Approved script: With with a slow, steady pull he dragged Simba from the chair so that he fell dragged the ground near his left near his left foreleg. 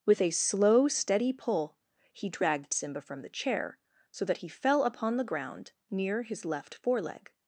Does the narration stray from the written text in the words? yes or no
yes